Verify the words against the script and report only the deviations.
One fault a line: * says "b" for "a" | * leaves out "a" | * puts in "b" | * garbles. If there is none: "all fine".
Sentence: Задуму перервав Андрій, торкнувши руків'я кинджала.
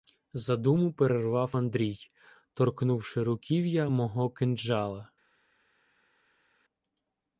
* puts in "мого"